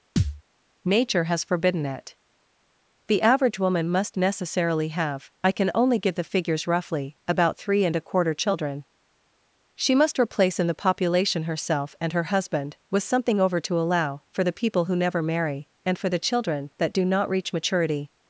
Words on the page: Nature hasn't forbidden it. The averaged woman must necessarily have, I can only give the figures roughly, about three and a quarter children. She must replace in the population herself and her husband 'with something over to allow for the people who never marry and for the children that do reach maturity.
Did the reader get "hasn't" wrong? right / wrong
wrong